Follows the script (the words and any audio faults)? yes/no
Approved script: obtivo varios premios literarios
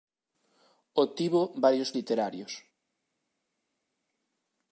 no